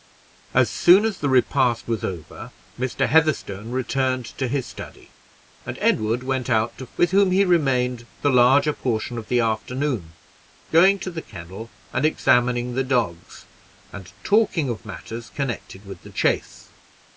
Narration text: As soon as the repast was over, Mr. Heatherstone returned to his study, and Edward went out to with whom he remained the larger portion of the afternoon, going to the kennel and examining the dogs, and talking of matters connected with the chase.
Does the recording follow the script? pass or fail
pass